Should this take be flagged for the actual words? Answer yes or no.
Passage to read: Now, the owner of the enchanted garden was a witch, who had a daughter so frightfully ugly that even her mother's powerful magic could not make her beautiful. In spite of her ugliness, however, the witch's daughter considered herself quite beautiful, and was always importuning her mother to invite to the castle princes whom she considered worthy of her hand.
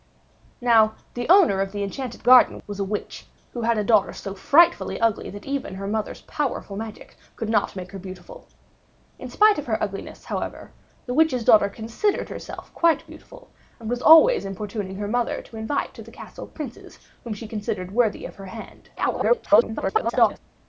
yes